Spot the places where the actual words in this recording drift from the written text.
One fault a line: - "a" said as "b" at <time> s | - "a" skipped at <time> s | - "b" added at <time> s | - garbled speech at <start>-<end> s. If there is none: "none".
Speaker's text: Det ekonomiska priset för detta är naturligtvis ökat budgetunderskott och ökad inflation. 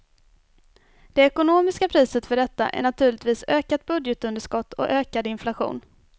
none